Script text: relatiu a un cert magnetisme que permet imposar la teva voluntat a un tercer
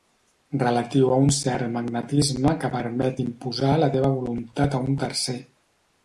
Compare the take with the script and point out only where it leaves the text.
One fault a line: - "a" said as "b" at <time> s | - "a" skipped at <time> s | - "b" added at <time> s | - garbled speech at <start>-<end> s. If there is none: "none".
none